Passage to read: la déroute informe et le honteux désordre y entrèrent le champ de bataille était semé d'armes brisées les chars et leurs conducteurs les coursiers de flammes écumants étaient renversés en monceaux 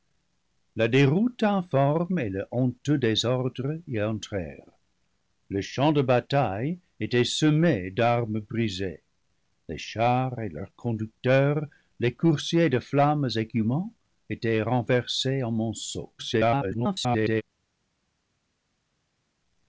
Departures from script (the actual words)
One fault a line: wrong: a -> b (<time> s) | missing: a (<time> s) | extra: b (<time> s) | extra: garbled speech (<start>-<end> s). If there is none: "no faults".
extra: garbled speech (16.2-17.4 s)